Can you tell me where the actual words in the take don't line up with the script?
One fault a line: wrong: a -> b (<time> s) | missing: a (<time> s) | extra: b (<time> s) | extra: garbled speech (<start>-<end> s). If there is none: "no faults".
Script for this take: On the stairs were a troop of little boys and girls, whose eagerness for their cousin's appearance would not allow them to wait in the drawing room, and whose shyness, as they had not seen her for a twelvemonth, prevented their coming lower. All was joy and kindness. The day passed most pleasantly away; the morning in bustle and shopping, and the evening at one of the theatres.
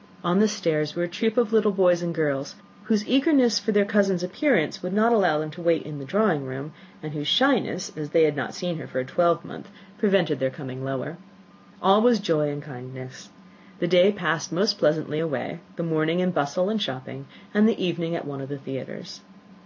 no faults